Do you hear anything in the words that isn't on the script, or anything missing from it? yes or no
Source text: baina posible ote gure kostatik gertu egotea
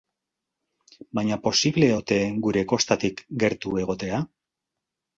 no